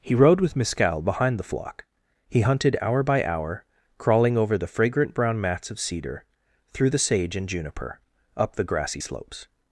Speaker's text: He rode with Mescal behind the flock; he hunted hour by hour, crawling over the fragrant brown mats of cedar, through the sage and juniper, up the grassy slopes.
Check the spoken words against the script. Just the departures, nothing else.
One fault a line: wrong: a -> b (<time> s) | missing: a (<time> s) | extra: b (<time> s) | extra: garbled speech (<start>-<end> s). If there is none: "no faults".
no faults